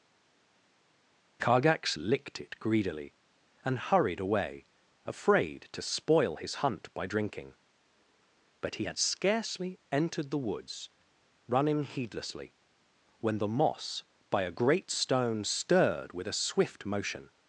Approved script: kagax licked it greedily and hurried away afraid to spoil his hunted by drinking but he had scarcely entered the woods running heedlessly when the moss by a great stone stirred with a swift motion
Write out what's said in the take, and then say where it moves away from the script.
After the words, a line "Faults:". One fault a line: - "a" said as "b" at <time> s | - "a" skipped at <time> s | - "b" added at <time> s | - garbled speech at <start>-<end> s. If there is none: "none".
kagax licked it greedily and hurried away afraid to spoil his hunt by drinking but he had scarcely entered the woods running heedlessly when the moss by a great stone stirred with a swift motion
Faults:
- "hunted" said as "hunt" at 6.5 s